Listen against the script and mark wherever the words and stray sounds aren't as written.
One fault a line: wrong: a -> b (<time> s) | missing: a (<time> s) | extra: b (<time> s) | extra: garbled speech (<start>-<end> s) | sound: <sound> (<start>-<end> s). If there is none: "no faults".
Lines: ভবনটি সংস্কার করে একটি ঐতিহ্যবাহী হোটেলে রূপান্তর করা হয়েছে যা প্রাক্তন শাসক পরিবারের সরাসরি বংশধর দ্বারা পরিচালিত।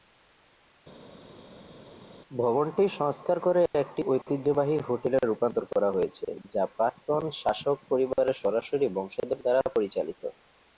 no faults